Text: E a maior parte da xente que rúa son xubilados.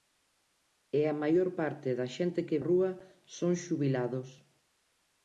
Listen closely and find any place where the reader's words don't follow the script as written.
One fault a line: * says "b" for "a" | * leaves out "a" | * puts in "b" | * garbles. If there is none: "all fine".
all fine